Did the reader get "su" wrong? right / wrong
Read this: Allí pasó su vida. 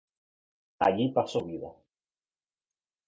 wrong